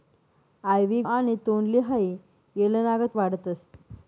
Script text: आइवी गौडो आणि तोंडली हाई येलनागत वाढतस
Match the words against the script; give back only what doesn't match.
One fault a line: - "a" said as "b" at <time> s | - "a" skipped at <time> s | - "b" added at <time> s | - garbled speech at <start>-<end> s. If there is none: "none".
- "गौडो" skipped at 1.0 s